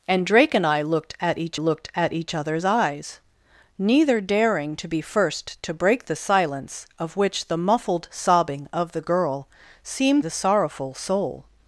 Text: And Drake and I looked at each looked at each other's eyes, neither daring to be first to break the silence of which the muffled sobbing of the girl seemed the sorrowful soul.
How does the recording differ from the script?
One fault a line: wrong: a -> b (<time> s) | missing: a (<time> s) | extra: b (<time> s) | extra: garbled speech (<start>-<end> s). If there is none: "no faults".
no faults